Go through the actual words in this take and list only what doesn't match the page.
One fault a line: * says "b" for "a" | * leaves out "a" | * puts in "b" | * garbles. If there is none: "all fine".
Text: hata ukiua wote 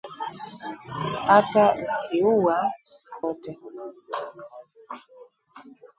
all fine